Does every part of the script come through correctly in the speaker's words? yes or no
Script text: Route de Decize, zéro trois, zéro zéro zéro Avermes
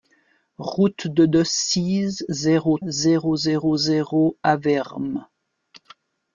no